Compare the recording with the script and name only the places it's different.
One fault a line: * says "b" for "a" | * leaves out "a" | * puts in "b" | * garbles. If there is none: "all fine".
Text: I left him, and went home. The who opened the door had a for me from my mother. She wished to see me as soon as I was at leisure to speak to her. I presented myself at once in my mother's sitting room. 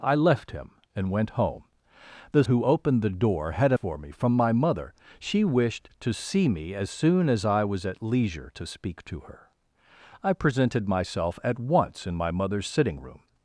all fine